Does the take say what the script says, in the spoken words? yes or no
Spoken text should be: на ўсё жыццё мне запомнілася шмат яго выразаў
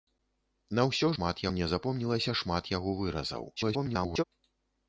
no